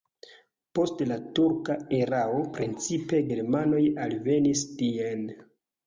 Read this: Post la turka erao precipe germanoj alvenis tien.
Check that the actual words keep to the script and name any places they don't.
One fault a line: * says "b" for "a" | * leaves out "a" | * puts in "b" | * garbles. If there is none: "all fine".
all fine